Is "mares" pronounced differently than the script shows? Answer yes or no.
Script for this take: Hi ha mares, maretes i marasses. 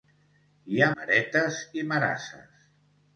yes